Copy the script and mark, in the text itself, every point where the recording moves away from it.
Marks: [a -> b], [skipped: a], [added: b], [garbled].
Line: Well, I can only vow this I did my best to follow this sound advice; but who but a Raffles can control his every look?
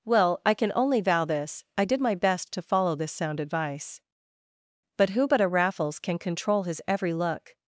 Well, I can only vow this I did my best to follow this sound advice; but who but a Raffles can control his every look?